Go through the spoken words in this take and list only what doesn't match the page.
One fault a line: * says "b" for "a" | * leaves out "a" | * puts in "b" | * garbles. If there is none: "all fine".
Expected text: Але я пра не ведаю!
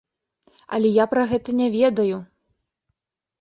* puts in "гэта"